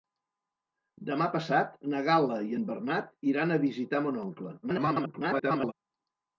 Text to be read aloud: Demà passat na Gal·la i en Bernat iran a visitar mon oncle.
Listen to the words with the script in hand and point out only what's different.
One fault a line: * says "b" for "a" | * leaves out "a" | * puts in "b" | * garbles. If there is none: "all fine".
* garbles